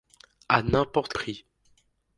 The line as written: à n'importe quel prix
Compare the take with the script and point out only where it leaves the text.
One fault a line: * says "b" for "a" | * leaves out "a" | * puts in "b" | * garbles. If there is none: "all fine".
* leaves out "quel"